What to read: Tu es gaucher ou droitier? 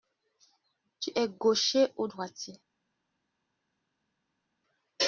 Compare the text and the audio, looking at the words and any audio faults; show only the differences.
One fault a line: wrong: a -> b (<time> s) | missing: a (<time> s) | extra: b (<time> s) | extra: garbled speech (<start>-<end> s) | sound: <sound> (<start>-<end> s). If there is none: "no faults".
no faults